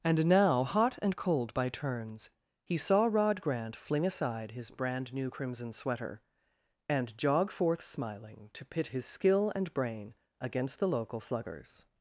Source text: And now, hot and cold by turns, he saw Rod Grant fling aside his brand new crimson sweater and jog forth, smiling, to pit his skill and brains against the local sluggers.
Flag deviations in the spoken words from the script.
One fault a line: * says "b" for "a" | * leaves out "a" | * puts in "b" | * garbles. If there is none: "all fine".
* says "brain" for "brains"